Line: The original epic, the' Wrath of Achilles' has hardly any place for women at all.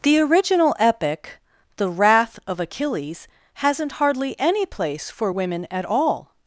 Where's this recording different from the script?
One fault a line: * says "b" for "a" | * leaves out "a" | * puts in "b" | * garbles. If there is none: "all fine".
* says "hasn't" for "has"